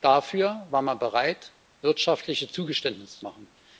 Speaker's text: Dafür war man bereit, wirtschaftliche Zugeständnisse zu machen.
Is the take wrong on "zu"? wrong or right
wrong